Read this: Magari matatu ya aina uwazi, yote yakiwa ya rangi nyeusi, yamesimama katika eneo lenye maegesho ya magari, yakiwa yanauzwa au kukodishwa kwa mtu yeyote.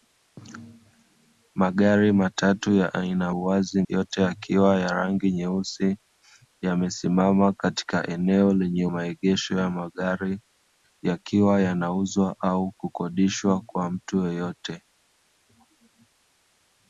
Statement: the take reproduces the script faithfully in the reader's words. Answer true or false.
true